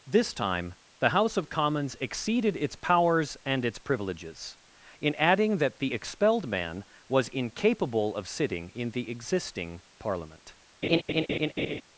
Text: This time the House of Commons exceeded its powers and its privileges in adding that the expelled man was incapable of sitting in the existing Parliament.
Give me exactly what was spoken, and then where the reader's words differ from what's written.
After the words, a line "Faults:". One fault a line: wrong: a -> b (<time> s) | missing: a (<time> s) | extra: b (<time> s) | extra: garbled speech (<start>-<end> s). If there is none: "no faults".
This time the House of Commons exceeded its powers and its privileges in adding that the expelled man was incapable of sitting in the existing Parliament.
Faults:
no faults